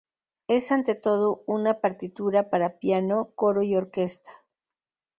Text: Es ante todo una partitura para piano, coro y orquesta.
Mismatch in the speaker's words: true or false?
false